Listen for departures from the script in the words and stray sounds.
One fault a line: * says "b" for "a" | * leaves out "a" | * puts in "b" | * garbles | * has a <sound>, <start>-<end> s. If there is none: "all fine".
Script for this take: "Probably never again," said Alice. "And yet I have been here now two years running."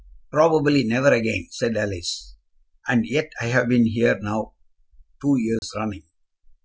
* has a dropout, 5.6-5.6 s